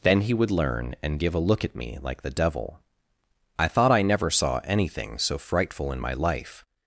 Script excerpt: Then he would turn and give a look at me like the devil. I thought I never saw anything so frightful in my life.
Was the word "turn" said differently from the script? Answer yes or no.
yes